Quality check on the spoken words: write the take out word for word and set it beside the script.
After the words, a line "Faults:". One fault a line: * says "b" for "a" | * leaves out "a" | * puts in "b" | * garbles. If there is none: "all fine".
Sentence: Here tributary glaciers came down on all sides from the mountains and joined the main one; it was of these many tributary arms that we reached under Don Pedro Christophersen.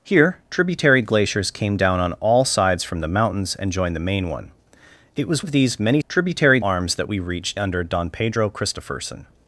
Here tributary glaciers came down on all sides from the mountains and joined the main one; it was of these many tributary arms that we reached under Don Pedro Christophersen.
Faults:
all fine